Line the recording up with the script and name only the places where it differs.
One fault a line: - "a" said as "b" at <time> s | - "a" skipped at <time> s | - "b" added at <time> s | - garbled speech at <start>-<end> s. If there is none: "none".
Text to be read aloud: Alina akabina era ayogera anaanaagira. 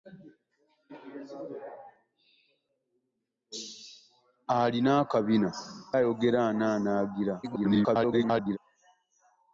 - "era" skipped at 5.5 s
- garbled speech at 7.4-8.6 s